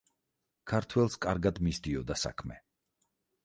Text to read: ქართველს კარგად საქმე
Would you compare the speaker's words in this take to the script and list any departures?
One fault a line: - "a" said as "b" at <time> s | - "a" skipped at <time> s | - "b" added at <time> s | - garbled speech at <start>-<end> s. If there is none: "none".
- "მისდიოდა" added at 1.7 s